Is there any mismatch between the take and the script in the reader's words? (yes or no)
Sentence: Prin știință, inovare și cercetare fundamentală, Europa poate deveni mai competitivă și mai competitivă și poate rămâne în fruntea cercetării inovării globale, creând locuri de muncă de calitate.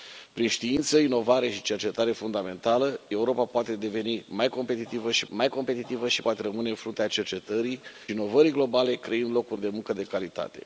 no